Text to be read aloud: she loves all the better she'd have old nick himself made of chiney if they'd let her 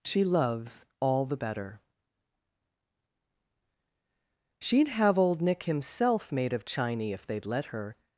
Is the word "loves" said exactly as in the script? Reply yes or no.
yes